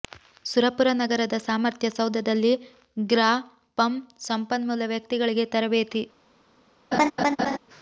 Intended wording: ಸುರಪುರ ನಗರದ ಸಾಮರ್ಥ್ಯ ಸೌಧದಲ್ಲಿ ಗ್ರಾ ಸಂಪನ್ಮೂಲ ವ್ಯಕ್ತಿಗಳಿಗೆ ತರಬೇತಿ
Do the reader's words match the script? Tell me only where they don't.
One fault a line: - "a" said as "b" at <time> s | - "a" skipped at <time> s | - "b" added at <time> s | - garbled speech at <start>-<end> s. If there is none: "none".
- "ಪಂ" added at 3.8 s